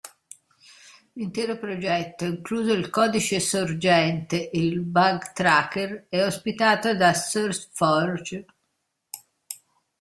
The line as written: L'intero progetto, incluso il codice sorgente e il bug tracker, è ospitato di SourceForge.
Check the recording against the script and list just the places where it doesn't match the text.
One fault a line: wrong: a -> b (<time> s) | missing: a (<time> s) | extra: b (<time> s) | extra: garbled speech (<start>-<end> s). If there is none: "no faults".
wrong: di -> da (7.0 s)